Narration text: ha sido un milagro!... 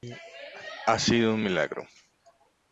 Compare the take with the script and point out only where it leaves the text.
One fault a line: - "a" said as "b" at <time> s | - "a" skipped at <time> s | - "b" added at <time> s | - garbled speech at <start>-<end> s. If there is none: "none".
none